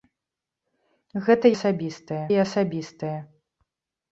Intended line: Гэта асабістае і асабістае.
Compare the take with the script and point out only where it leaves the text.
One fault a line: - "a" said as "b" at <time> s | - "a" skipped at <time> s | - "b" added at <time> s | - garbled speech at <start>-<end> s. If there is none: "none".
none